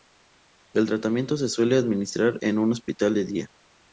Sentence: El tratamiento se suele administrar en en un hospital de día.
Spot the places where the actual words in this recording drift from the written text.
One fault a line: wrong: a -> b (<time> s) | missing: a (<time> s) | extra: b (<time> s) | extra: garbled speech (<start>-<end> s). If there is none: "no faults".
missing: en (2.6 s)